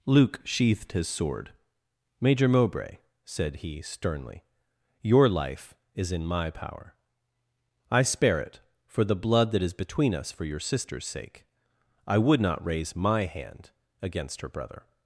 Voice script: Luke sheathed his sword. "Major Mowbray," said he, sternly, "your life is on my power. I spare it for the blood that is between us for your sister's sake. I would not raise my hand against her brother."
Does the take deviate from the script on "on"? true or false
true